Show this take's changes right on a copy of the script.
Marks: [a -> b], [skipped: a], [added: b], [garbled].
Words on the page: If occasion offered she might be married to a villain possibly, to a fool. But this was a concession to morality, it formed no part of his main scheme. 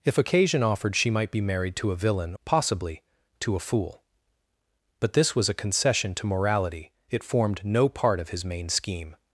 If occasion offered she might be married to a villain possibly, to a fool. But this was a concession to morality, it formed no part of his main scheme.